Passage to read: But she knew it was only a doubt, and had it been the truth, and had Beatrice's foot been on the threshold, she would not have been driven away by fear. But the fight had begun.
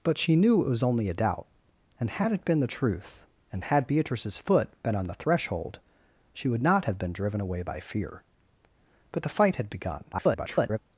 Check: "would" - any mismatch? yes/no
no